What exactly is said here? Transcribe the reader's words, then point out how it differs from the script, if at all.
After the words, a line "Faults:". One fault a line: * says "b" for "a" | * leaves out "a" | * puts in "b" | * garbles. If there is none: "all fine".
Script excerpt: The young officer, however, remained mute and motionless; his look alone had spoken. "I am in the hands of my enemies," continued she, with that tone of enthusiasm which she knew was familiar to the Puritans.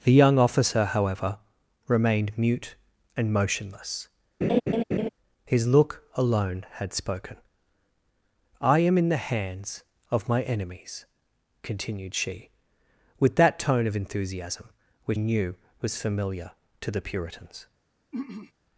The young officer, however, remained mute and motionless; his look alone had spoken. "I am in the hands of my enemies," continued she, with that tone of enthusiasm which knew was familiar to the Puritans.
Faults:
* leaves out "she"